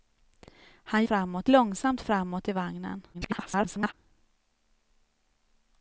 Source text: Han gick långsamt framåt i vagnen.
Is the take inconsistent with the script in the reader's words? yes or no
yes